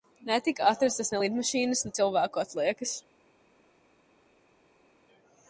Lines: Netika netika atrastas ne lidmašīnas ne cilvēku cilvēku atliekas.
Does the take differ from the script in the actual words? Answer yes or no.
yes